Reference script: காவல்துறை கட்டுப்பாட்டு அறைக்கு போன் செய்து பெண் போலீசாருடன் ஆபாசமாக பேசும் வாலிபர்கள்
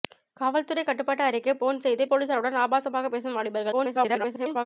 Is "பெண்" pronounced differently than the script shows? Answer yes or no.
yes